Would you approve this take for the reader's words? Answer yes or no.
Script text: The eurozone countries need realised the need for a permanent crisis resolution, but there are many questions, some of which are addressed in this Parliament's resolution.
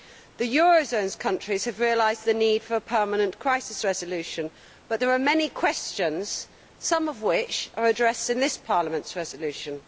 no